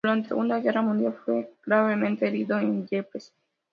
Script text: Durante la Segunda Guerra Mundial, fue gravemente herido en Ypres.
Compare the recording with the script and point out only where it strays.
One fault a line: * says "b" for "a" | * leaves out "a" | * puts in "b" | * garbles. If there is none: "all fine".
* leaves out "la"